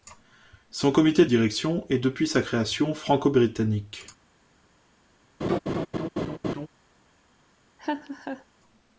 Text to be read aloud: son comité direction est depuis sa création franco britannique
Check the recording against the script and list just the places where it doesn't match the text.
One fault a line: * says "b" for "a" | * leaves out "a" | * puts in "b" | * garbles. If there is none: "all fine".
all fine